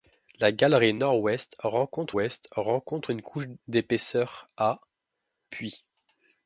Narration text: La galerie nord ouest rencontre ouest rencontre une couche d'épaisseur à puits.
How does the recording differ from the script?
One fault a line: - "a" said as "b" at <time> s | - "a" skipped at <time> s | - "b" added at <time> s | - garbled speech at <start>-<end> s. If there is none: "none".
none